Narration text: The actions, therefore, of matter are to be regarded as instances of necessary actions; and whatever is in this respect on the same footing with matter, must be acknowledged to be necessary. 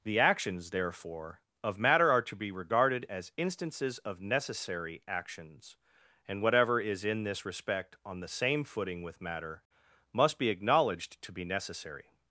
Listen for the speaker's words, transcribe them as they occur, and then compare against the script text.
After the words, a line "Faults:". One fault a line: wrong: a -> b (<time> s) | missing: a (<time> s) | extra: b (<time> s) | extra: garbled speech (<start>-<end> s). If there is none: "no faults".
The actions, therefore, of matter are to be regarded as instances of necessary actions; and whatever is in this respect on the same footing with matter, must be acknowledged to be necessary.
Faults:
no faults